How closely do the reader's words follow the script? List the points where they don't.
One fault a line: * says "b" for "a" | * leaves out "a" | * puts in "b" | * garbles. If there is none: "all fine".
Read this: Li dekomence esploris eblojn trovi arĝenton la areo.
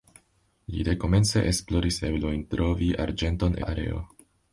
all fine